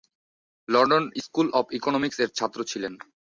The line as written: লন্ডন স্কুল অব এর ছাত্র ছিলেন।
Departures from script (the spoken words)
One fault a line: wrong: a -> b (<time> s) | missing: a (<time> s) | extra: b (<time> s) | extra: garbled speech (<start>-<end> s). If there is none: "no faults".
extra: ইকোনমিক্স (1.8 s)